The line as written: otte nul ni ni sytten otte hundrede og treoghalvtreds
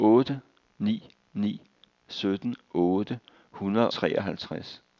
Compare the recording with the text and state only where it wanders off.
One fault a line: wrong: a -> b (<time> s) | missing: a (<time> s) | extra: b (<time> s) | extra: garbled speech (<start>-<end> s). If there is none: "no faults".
missing: nul (0.4 s)
missing: og (3.9 s)